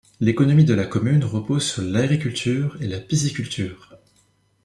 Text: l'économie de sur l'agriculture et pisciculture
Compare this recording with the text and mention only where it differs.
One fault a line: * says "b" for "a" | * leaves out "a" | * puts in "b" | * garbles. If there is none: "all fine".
* puts in "la commune repose"
* puts in "la"